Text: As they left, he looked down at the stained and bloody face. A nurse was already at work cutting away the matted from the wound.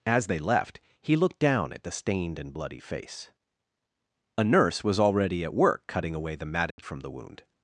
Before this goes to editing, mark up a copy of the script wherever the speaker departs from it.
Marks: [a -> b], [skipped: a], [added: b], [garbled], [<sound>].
As they left, he looked down at the stained and bloody face. A nurse was already at work cutting away the matted [dropout] from the wound.